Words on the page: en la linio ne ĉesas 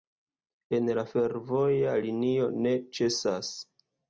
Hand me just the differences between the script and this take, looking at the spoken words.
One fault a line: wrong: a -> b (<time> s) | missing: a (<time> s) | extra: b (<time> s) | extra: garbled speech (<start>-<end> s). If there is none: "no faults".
extra: fervoja (1.1 s)